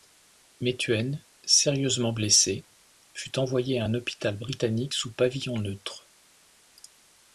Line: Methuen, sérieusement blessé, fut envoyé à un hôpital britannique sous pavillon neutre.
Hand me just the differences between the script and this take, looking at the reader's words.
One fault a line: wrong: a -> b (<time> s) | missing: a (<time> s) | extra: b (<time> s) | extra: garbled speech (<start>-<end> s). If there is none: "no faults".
no faults